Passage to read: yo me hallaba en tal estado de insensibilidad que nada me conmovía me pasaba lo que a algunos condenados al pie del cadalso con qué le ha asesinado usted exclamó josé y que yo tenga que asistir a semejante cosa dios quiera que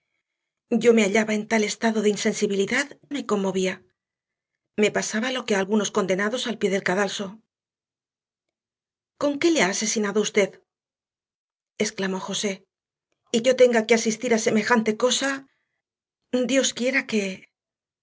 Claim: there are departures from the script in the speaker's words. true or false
true